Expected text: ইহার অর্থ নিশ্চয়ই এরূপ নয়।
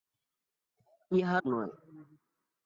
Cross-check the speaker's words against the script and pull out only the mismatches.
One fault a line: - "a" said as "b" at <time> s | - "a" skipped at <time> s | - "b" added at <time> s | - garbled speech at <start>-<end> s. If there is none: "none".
- "অর্থ নিশ্চয়ই এরূপ" skipped at 1.4 s